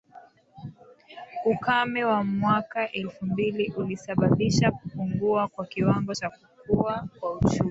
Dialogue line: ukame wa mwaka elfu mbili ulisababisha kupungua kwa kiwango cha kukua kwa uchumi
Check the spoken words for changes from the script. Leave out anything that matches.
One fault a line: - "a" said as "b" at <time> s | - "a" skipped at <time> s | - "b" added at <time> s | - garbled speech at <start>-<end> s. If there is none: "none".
none